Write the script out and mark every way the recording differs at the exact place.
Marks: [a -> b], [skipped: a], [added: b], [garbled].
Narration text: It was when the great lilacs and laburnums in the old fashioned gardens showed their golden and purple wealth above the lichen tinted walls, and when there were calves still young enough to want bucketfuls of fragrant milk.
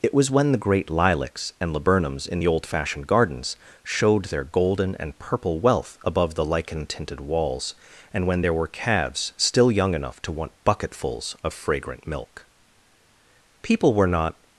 It was when the great lilacs and laburnums in the old fashioned gardens showed their golden and purple wealth above the lichen tinted walls, and when there were calves still young enough to want bucketfuls of fragrant milk. [added: People were not]